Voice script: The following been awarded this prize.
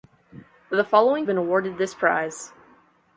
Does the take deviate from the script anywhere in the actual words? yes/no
no